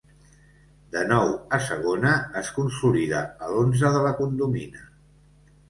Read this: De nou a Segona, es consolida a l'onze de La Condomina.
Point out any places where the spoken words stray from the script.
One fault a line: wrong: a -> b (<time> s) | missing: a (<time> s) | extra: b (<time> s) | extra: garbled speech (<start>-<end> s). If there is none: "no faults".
no faults